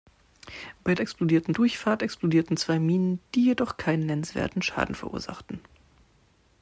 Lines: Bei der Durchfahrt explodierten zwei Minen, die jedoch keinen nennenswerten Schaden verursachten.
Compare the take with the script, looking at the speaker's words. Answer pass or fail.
fail